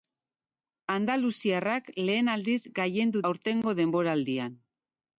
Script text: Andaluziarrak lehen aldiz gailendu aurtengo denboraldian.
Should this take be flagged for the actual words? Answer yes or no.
no